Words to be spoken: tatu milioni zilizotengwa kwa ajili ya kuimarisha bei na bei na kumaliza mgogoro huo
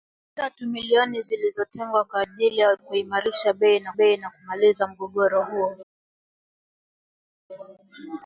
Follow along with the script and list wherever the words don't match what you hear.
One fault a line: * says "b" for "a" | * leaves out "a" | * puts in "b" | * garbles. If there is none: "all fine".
all fine